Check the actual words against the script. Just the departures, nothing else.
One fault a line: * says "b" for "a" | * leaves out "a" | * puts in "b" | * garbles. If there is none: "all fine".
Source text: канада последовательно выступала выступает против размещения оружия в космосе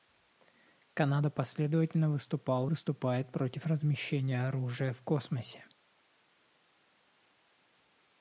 all fine